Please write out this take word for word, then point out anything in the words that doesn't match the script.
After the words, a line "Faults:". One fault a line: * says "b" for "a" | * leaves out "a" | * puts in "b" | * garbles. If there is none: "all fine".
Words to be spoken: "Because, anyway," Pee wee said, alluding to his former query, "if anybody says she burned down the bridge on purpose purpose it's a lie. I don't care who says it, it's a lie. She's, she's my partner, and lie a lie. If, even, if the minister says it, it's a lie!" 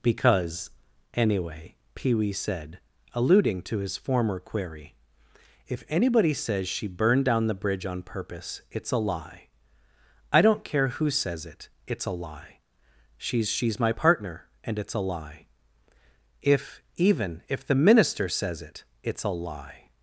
"Because, anyway," Pee wee said, alluding to his former query, "if anybody says she burned down the bridge on purpose it's a lie. I don't care who says it, it's a lie. She's, she's my partner, and it's a lie. If, even, if the minister says it, it's a lie!"
Faults:
* leaves out "purpose"
* says "it's" for "lie"